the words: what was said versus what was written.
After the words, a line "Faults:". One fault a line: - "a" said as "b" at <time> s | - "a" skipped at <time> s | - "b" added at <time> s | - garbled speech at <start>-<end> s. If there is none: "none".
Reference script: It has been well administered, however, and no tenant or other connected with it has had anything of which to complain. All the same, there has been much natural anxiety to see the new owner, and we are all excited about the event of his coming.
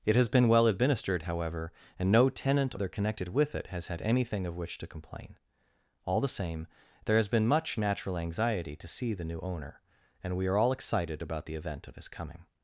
It has been well administered, however, and no tenant other connected with it has had anything of which to complain. All the same, there has been much natural anxiety to see the new owner, and we are all excited about the event of his coming.
Faults:
- "or" skipped at 2.7 s